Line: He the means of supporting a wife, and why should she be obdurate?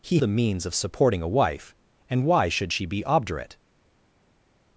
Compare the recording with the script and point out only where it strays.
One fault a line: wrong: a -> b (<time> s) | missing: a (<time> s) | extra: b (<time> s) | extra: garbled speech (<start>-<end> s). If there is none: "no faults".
no faults